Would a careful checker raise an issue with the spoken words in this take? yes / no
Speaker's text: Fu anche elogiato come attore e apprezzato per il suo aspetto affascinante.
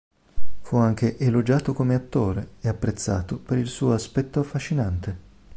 no